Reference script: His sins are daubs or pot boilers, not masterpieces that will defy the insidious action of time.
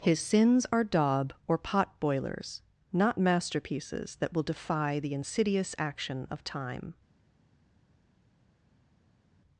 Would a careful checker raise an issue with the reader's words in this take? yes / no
yes